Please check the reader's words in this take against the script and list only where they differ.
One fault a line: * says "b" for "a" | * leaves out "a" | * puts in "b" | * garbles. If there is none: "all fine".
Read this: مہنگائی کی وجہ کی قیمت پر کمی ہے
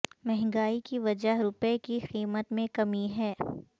* puts in "روپے"
* says "میں" for "پر"